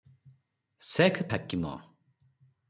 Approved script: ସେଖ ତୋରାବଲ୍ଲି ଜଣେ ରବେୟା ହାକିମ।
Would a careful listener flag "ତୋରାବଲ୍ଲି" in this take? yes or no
yes